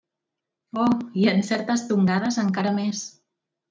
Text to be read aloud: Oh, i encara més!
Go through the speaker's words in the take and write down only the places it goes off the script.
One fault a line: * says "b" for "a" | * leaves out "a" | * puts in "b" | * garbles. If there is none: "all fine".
* puts in "en certes tongades"